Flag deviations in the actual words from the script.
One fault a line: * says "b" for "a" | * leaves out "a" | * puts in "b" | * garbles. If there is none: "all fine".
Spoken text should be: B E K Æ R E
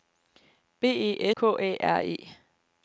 all fine